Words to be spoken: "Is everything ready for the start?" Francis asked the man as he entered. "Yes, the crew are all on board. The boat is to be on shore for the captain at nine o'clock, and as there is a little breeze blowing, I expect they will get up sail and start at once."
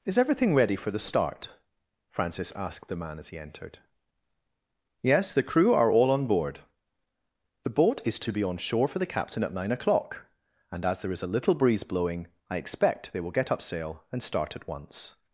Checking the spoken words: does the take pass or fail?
pass